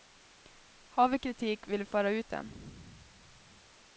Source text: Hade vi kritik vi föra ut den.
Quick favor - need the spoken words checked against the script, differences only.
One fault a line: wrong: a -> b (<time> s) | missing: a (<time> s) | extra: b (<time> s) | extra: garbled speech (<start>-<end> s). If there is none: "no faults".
wrong: Hade -> Har (0.9 s)
extra: vill (1.7 s)